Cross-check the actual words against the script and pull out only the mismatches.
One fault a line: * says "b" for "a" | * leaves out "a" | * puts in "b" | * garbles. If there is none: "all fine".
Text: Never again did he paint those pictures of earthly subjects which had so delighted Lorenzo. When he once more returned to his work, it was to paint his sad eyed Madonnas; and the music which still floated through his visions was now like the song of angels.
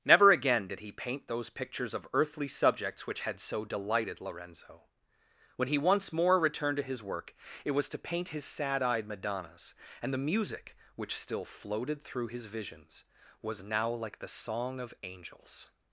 all fine